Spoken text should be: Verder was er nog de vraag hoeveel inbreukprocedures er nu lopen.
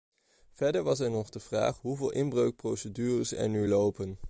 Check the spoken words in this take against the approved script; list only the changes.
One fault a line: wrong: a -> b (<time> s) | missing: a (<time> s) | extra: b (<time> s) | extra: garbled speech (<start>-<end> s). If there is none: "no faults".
no faults